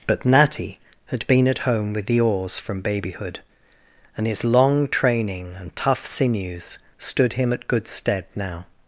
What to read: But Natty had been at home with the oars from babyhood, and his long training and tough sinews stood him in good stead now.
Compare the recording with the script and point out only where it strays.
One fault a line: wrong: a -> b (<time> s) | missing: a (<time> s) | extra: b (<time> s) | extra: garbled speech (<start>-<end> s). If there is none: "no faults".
wrong: in -> at (7.5 s)